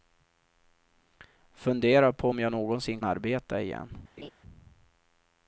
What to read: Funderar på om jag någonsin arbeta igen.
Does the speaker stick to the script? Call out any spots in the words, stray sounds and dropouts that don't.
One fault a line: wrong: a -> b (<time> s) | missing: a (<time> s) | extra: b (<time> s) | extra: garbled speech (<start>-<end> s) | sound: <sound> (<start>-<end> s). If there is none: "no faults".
sound: laugh (4.2-4.3 s)